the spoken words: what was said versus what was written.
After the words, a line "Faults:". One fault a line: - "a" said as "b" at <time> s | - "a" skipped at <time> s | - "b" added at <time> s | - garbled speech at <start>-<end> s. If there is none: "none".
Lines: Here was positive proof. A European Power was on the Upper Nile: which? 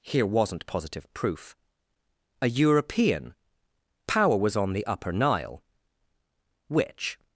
Here wasn't positive proof. A European Power was on the Upper Nile: which?
Faults:
- "was" said as "wasn't" at 0.2 s